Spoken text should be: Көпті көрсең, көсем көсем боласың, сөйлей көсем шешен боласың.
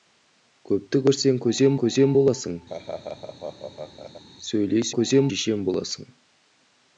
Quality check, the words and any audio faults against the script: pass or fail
fail